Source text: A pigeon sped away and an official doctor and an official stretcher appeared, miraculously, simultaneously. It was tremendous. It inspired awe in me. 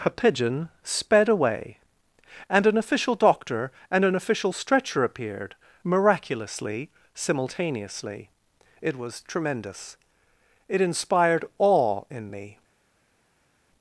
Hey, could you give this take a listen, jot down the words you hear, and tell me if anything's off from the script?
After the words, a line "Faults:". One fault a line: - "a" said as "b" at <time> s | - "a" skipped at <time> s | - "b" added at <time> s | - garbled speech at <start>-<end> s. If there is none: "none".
A pigeon sped away and an official doctor and an official stretcher appeared, miraculously, simultaneously. It was tremendous. It inspired awe in me.
Faults:
none